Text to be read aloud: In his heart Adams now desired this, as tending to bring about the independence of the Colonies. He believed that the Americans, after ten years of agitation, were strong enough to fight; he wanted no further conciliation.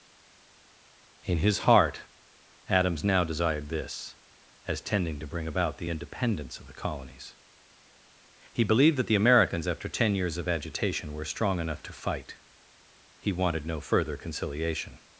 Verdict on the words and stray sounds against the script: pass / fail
pass